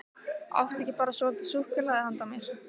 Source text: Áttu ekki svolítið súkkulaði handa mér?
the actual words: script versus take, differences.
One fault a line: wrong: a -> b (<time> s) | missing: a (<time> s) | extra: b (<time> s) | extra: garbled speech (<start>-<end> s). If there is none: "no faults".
extra: bara (1.0 s)